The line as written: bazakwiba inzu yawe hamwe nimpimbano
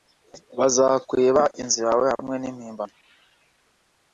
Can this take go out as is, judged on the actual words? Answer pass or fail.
pass